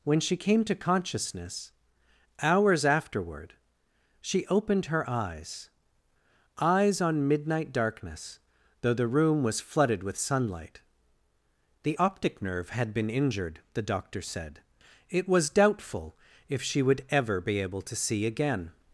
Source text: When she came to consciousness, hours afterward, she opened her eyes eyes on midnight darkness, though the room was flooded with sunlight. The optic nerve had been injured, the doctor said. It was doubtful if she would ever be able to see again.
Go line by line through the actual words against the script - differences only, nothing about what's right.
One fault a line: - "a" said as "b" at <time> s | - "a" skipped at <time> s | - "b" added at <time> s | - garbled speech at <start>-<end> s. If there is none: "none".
none